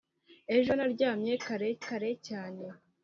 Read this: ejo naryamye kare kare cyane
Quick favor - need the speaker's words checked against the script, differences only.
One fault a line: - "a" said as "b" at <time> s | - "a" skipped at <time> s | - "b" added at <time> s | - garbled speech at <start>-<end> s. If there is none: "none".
none